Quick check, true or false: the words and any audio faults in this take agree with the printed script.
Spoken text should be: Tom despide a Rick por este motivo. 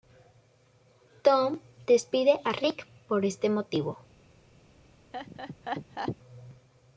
false